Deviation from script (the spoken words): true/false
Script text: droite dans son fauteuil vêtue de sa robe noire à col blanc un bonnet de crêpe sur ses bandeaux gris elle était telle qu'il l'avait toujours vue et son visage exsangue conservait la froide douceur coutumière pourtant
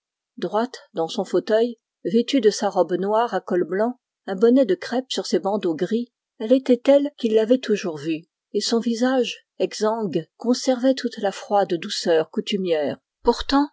true